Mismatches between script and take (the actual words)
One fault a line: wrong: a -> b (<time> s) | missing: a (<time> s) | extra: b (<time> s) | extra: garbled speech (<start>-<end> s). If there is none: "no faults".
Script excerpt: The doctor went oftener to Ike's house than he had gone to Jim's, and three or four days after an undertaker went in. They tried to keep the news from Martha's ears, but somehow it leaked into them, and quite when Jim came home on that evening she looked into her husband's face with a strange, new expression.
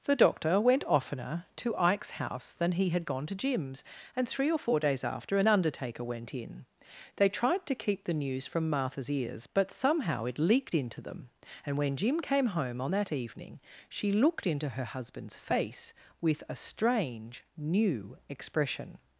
missing: quite (11.8 s)